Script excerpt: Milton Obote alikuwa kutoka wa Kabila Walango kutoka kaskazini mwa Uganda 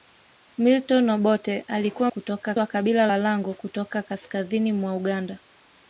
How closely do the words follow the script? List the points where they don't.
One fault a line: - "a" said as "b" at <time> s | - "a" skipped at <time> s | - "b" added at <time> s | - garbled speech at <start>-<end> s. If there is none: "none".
none